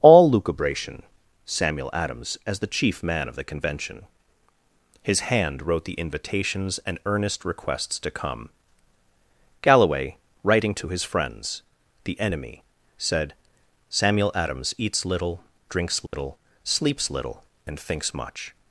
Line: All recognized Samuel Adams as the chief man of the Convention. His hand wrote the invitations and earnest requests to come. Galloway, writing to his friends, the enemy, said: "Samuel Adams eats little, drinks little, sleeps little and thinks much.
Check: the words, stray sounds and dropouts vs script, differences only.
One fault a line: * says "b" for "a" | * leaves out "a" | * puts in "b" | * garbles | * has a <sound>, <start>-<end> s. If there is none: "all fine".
* says "lucubration" for "recognized"
* has a dropout, 16.1-16.1 s